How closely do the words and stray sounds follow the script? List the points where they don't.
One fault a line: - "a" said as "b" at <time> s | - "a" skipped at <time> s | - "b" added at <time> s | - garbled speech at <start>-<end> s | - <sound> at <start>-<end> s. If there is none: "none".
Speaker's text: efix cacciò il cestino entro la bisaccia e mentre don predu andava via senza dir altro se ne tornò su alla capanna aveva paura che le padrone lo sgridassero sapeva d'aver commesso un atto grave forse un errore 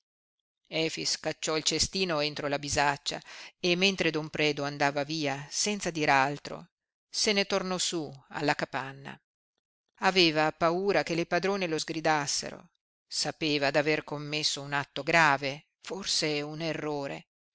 none